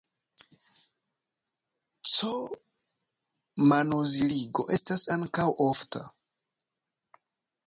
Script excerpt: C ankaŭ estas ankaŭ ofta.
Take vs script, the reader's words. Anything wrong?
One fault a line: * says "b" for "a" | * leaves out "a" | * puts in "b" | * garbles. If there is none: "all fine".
* says "manoziligo" for "ankaŭ"